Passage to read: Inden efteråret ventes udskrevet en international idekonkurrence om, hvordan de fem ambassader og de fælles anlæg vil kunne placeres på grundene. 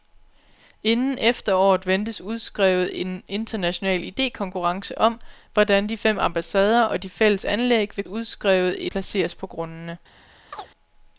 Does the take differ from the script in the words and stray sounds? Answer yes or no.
yes